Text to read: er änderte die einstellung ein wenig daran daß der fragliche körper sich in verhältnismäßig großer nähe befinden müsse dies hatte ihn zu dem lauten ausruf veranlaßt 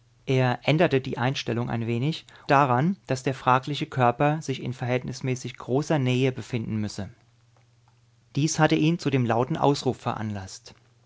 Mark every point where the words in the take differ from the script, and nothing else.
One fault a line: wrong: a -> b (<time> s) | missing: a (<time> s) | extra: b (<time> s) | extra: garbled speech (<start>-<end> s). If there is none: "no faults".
no faults